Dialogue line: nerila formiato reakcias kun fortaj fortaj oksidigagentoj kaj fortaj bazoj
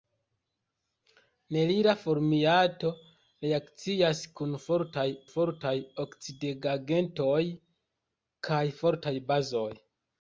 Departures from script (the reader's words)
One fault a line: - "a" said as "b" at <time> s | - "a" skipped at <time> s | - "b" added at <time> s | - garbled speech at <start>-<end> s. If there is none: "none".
none